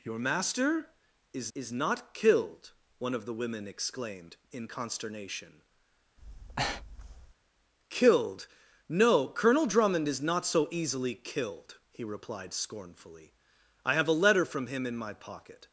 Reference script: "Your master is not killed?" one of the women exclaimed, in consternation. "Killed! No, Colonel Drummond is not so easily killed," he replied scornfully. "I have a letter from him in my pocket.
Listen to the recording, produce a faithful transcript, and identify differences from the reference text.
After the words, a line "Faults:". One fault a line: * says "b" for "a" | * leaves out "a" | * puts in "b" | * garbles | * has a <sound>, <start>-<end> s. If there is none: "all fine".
"Your master is is not killed?" one of the women exclaimed, in consternation. "Killed! No, Colonel Drummond is not so easily killed," he replied scornfully. "I have a letter from him in my pocket.
Faults:
* puts in "is"
* has a breath, 6.2-7.3 s